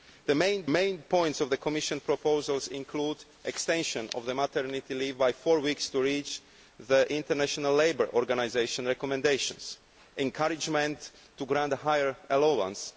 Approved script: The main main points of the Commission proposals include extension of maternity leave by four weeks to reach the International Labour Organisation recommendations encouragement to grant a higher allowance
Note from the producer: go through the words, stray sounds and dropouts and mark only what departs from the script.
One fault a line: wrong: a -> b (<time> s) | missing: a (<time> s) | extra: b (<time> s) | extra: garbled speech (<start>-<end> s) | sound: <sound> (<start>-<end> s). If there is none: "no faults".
no faults